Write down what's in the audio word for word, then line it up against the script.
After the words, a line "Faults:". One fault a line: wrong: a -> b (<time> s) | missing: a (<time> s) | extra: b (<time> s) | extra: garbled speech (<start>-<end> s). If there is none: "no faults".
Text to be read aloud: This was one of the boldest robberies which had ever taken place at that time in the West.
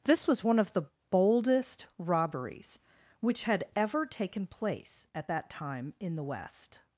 This was one of the boldest robberies which had ever taken place at that time in the West.
Faults:
no faults